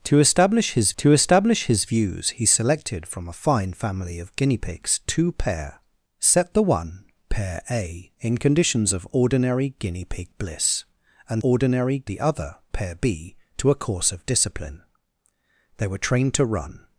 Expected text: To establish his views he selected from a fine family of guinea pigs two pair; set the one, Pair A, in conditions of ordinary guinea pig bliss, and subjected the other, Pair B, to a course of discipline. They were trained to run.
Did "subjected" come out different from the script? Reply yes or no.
yes